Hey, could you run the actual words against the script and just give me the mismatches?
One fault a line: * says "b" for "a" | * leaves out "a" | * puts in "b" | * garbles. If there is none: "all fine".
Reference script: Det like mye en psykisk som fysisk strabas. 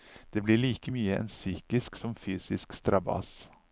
* puts in "blir"